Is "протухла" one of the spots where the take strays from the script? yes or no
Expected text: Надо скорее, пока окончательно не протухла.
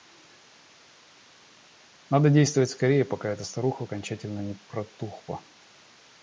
no